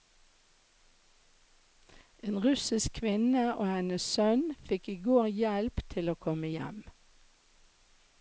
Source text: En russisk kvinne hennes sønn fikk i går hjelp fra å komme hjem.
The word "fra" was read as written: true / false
false